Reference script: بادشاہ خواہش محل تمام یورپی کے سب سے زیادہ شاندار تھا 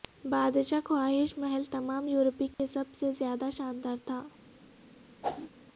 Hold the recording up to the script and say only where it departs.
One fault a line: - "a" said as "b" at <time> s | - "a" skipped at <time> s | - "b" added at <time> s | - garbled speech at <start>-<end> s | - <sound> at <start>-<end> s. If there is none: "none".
- dropout at 2.5-2.6 s
- whoosh at 5.2-5.5 s